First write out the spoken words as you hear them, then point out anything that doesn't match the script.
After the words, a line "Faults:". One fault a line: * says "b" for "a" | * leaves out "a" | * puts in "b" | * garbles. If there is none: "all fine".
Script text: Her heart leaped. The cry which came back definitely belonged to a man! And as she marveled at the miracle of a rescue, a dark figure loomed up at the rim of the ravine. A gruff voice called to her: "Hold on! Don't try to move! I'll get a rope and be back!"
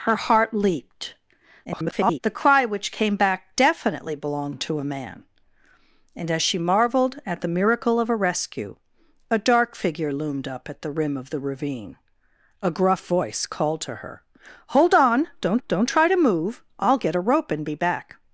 Her heart leaped. [garbled] The cry which came back definitely belonged to a man! And as she marveled at the miracle of a rescue, a dark figure loomed up at the rim of the ravine. A gruff voice called to her: "Hold on! Don't don't try to move! I'll get a rope and be back!"
Faults:
* garbles
* puts in "don't"